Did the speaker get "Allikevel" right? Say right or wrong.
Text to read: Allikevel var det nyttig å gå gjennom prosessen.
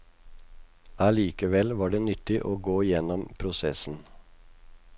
right